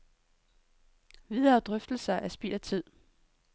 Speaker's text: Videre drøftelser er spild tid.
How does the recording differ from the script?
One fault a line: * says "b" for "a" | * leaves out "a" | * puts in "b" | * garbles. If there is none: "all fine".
* puts in "af"